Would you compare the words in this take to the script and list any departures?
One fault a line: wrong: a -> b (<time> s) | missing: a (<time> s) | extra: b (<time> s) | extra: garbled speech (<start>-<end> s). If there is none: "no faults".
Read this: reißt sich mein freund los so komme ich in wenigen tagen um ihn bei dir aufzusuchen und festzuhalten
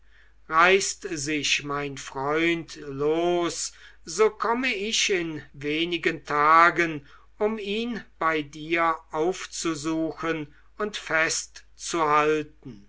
no faults